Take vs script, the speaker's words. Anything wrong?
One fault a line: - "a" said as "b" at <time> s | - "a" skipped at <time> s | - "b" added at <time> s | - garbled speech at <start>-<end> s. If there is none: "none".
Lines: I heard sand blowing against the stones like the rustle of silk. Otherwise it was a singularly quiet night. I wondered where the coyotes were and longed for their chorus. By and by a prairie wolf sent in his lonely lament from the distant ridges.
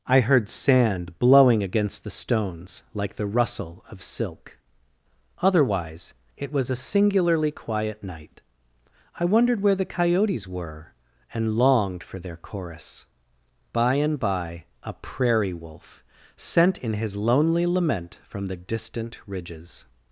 none